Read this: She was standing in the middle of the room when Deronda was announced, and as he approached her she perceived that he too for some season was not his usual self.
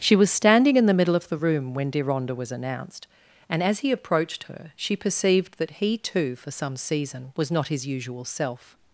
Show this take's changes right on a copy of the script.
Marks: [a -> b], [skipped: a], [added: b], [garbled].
She was standing in the middle of the room when Deronda was announced, and as he approached her she perceived that he too for some season was not his usual self.